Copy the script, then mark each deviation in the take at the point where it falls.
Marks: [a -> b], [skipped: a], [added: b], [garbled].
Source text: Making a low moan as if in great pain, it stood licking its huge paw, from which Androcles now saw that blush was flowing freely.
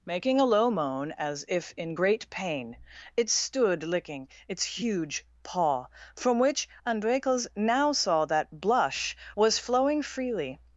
Making a low moan as if in great pain, it stood licking its huge paw, from which Androcles now saw that blush was flowing freely.